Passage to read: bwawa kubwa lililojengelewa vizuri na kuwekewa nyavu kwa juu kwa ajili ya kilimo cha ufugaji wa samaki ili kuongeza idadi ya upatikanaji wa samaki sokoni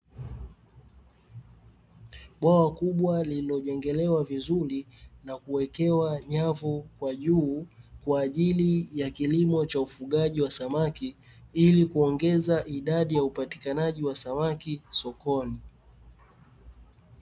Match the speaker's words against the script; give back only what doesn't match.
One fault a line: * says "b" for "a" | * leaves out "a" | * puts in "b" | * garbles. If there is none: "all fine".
all fine